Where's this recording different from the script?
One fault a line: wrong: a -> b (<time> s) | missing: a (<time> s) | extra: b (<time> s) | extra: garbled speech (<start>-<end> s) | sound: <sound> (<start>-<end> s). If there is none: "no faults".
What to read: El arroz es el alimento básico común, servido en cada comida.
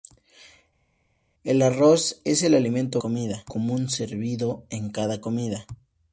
wrong: básico -> comida (3.0 s)